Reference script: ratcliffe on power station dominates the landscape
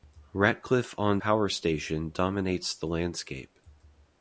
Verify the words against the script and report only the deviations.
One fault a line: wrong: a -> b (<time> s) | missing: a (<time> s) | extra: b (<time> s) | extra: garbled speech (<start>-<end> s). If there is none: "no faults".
no faults